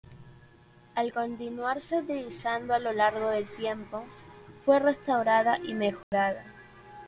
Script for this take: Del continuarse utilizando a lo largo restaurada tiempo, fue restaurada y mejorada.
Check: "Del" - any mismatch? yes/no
yes